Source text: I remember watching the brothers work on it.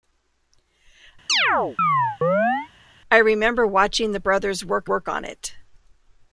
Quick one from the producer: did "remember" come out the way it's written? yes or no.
yes